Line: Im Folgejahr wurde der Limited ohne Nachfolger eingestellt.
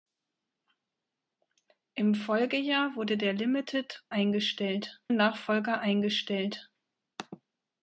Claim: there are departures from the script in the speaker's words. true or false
true